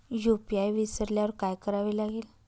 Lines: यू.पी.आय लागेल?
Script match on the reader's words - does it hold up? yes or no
no